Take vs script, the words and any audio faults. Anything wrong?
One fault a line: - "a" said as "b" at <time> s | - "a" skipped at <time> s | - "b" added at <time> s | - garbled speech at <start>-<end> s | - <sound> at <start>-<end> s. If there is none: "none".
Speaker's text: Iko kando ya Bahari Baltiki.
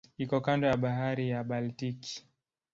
- "ya" added at 1.3 s